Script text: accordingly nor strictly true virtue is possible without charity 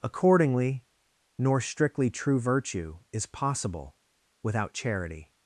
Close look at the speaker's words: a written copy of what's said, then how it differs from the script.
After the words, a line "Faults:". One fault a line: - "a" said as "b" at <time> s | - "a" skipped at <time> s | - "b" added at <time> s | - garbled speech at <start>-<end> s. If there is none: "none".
accordingly nor strictly true virtue is possible without charity
Faults:
none